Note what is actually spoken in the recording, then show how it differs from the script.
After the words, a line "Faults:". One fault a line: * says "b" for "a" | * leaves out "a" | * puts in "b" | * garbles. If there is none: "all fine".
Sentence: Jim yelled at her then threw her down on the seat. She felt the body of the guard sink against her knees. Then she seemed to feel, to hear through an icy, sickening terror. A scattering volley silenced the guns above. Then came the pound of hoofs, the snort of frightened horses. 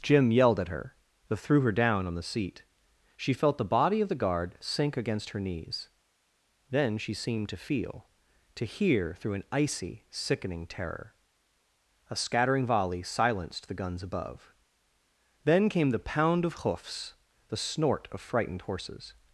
Jim yelled at her then threw her down on the seat. She felt the body of the guard sink against her knees. Then she seemed to feel, to hear through an icy, sickening terror. A scattering volley silenced the guns above. Then came the pound of hoofs, the snort of frightened horses.
Faults:
all fine